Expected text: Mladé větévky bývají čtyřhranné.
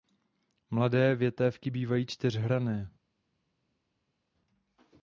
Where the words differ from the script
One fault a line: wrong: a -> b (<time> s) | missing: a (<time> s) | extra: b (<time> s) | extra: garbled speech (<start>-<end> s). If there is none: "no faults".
no faults